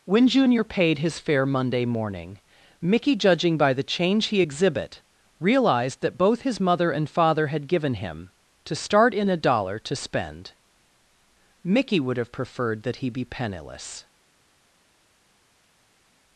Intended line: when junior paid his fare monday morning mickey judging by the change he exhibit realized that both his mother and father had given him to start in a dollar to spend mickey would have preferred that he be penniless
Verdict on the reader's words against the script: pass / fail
pass